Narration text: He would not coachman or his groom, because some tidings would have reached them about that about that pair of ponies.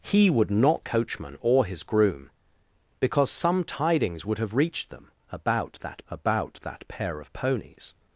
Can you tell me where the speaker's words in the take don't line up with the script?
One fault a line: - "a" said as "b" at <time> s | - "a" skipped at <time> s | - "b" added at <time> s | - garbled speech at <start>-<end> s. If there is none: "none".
none